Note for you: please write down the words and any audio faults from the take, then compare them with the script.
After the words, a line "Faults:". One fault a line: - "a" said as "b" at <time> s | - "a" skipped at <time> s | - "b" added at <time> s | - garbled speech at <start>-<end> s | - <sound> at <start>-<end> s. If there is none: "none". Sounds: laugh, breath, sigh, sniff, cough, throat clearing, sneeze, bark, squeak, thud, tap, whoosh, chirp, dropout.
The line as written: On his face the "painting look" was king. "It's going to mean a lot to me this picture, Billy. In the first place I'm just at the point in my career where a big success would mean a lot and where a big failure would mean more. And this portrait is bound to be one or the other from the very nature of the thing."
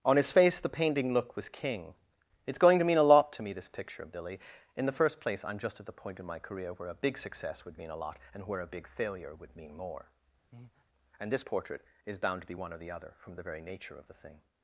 On his face the "painting look" was king. "It's going to mean a lot to me this picture, of Billy. In the first place I'm just at the point in my career where a big success would mean a lot and where a big failure would mean more. And this portrait is bound to be one or the other from the very nature of the thing."
Faults:
- "of" added at 4.0 s
- breath at 10.5-10.8 s